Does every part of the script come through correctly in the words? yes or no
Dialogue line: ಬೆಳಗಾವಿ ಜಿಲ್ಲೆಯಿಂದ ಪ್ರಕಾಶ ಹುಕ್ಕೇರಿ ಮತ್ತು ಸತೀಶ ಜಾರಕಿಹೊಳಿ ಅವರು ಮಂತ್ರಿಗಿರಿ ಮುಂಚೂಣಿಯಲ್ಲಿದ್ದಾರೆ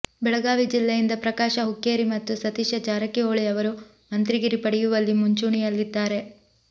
no